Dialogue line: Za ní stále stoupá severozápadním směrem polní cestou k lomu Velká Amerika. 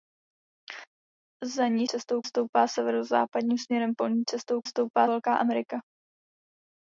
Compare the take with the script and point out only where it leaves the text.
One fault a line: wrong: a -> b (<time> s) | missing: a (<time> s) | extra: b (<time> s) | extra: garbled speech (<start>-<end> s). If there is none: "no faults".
wrong: stále -> cestou (1.9 s)
wrong: lomu -> stoupá (4.6 s)